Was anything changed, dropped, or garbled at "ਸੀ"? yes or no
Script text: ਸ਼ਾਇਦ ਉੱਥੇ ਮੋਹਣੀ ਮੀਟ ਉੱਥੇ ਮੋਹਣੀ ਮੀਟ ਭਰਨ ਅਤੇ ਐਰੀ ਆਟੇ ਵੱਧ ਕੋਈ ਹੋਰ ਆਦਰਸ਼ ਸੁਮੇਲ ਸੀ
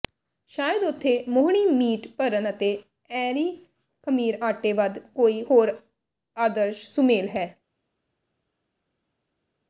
yes